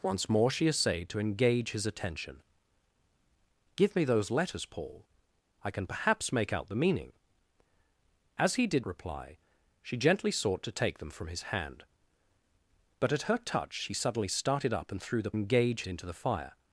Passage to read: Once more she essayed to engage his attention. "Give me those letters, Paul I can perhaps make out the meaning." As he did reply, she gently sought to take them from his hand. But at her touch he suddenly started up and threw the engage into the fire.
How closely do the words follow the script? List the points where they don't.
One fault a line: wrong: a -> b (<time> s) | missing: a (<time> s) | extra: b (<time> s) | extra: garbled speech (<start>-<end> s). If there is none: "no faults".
no faults